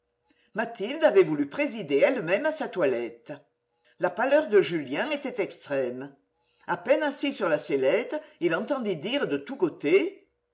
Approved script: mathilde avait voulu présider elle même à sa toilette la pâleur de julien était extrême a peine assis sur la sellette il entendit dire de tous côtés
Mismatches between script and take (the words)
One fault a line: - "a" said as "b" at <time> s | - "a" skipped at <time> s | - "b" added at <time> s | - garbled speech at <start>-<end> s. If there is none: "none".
none